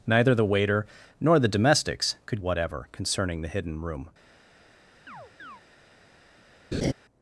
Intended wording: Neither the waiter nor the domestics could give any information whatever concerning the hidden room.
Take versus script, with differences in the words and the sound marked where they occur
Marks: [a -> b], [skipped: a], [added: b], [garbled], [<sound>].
Neither the waiter nor the domestics could [skipped: give any information] whatever concerning the hidden room. [chirp] [laugh]